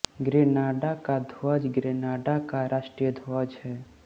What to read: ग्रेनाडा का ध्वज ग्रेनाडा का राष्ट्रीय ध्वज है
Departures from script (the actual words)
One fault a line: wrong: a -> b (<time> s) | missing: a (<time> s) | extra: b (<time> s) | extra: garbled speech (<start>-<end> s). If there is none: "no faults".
no faults